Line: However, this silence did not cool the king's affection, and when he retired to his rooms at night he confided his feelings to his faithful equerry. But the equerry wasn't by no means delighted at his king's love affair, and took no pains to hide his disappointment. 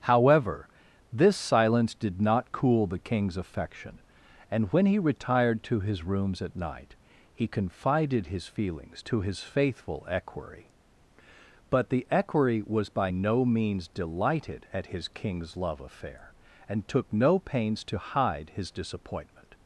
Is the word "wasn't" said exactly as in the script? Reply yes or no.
no